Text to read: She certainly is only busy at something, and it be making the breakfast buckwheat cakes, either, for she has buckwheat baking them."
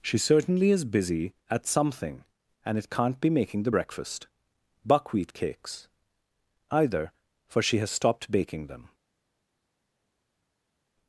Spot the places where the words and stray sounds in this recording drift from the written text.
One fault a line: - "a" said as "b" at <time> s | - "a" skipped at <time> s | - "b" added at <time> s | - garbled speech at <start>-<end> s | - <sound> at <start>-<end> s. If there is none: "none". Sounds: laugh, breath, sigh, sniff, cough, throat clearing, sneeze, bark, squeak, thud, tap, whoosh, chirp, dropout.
- "only" skipped at 0.8 s
- "can't" added at 2.9 s
- "buckwheat" said as "stopped" at 7.9 s